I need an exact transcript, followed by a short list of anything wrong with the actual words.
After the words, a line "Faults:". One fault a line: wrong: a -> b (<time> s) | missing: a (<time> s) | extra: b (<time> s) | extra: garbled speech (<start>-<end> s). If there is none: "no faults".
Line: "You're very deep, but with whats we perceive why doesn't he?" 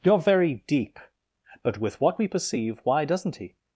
"You're very deep, but with what we perceive why doesn't he?"
Faults:
wrong: whats -> what (2.0 s)